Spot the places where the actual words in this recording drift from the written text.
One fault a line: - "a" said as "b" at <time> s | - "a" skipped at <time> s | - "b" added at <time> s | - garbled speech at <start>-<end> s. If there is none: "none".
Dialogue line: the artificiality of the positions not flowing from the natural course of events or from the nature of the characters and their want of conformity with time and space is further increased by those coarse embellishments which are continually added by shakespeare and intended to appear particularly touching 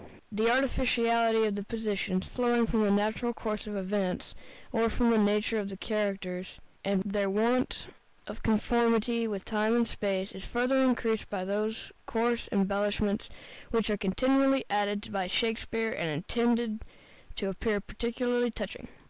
- "not" skipped at 2.3 s